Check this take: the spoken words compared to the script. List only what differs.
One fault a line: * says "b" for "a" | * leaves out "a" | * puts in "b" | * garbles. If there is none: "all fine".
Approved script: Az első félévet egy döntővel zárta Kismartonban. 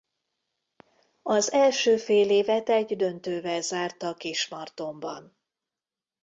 all fine